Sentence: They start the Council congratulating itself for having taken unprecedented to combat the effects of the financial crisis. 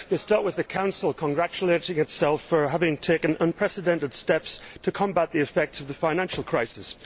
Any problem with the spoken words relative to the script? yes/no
yes